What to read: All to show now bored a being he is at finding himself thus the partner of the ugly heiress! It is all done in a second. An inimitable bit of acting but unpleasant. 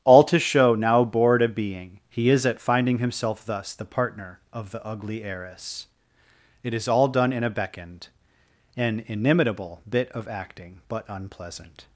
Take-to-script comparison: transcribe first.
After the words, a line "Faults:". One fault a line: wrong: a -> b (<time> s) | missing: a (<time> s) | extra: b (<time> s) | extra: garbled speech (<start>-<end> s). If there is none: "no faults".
All to show now bored a being he is at finding himself thus the partner of the ugly heiress! It is all done in a beckoned. An inimitable bit of acting but unpleasant.
Faults:
wrong: second -> beckoned (7.5 s)